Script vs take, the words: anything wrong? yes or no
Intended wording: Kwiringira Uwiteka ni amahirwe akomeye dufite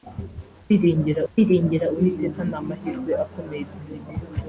yes